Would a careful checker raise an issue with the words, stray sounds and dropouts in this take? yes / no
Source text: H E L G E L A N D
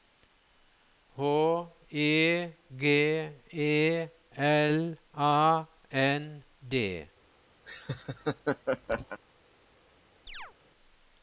yes